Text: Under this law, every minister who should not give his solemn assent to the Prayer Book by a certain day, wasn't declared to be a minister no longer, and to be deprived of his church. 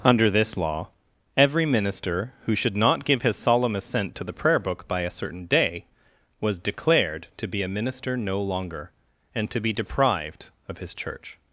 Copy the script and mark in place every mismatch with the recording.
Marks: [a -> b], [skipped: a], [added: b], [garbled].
Under this law, every minister who should not give his solemn assent to the Prayer Book by a certain day, [wasn't -> was] declared to be a minister no longer, and to be deprived of his church.